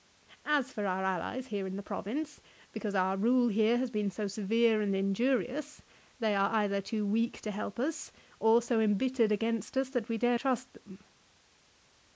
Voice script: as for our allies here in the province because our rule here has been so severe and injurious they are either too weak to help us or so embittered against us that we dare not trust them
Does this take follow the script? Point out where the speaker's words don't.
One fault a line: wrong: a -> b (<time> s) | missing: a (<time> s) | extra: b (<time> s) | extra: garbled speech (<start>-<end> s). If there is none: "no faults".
missing: not (10.4 s)